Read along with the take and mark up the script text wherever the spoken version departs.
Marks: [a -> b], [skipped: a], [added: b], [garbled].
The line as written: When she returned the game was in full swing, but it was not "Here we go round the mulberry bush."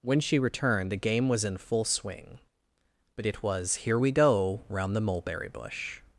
When she returned the game was in full swing, but it was [skipped: not] "Here we go round the mulberry bush."